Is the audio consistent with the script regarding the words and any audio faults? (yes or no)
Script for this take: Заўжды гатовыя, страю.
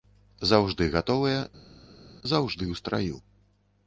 no